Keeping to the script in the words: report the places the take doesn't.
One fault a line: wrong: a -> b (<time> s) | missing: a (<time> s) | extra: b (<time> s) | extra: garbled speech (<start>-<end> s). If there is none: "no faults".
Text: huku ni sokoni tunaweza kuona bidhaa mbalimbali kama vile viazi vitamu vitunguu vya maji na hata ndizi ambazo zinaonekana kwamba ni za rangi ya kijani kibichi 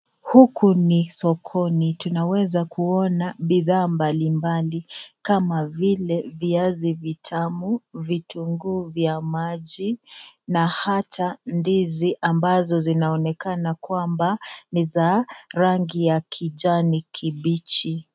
no faults